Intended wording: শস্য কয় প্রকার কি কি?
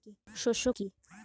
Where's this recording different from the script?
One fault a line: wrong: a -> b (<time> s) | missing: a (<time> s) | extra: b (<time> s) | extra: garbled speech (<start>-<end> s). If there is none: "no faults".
missing: কয় প্রকার কি (0.7 s)